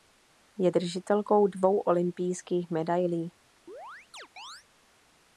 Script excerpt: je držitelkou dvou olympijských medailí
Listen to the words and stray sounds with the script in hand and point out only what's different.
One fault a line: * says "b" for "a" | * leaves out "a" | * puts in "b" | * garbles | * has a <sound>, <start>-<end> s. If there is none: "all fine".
* has a chirp, 3.7-4.6 s